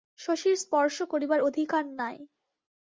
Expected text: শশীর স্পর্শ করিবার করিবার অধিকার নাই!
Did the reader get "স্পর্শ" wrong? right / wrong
right